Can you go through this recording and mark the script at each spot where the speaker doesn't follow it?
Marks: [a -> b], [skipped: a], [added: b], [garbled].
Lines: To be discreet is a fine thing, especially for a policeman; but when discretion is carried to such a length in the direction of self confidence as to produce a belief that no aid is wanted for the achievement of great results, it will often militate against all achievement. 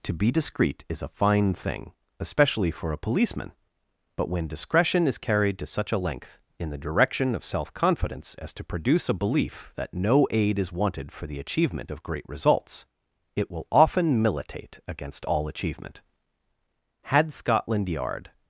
To be discreet is a fine thing, especially for a policeman; but when discretion is carried to such a length in the direction of self confidence as to produce a belief that no aid is wanted for the achievement of great results, it will often militate against all achievement. [added: Had Scotland Yard]